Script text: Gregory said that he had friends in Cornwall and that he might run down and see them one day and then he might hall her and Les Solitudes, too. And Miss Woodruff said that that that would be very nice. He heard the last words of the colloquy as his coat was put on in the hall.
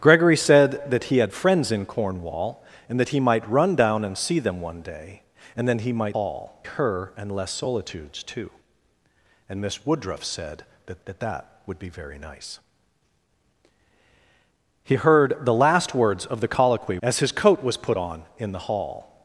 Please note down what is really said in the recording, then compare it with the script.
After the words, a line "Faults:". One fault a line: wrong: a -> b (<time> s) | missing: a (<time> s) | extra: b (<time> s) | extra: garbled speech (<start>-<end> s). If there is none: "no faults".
Gregory said that he had friends in Cornwall and that he might run down and see them one day and then he might hall her and Les Solitudes, too. And Miss Woodruff said that that that would be very nice. He heard the last words of the colloquy as his coat was put on in the hall.
Faults:
no faults